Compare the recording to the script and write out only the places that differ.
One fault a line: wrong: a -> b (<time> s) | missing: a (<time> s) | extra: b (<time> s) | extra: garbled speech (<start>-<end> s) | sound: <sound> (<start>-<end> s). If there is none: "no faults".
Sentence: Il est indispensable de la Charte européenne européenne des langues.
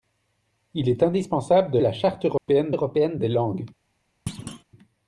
sound: dropout (2.4-2.5 s)
sound: thud (4.3-4.6 s)